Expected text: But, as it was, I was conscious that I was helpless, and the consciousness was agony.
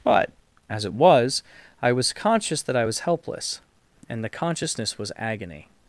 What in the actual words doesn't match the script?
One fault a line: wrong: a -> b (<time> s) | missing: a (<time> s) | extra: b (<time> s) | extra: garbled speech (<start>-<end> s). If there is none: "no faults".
no faults